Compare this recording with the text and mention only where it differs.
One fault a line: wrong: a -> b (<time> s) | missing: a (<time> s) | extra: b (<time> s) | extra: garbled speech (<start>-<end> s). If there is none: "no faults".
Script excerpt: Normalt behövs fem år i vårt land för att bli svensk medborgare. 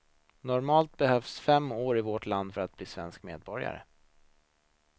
no faults